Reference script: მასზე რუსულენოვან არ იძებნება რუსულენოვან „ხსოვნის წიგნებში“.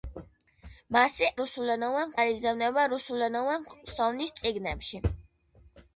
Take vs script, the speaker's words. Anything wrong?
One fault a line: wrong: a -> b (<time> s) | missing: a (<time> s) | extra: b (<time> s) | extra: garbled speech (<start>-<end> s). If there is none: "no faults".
no faults